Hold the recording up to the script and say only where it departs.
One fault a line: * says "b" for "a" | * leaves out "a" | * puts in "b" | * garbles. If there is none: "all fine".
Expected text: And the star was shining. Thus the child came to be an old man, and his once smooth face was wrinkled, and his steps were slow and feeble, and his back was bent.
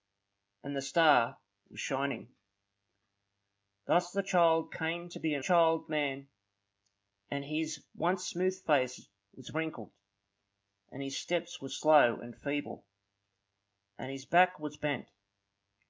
* says "child" for "old"